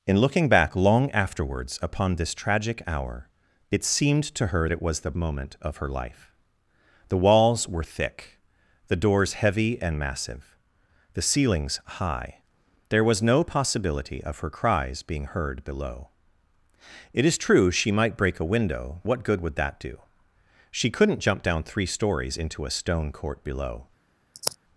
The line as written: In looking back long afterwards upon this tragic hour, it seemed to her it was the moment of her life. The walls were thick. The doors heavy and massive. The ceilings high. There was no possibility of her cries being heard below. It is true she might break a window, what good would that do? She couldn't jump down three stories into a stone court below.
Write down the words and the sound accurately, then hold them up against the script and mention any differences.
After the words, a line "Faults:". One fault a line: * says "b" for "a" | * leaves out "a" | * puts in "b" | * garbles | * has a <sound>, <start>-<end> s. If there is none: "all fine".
In looking back long afterwards upon this tragic hour, it seemed to her it was the moment of her life. The walls were thick. The doors heavy and massive. The ceilings high. There was no possibility of her cries being heard below. It is true she might break a window, what good would that do? She couldn't jump down three stories into a stone court below.
Faults:
* has a sigh, 24.3-24.6 s